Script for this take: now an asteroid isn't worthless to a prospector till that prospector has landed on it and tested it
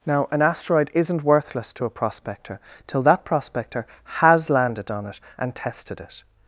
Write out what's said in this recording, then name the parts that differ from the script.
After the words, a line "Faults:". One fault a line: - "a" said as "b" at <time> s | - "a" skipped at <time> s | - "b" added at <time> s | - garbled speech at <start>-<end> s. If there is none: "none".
now an asteroid isn't worthless to a prospector till that prospector has landed on it and tested it
Faults:
none